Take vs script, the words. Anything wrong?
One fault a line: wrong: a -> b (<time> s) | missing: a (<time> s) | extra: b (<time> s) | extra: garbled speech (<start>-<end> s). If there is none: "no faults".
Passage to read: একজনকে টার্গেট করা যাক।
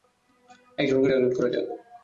no faults